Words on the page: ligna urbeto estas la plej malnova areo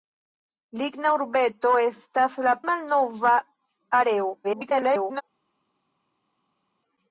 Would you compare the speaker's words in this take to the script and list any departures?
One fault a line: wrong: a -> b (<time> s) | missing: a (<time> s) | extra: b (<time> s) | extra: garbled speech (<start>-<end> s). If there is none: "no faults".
missing: plej (2.6 s)
extra: garbled speech (4.4-5.2 s)